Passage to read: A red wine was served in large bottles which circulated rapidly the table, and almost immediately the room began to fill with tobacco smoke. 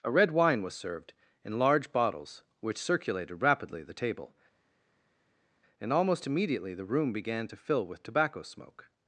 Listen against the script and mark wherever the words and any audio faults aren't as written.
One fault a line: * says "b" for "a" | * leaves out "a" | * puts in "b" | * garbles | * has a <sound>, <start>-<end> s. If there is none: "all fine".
all fine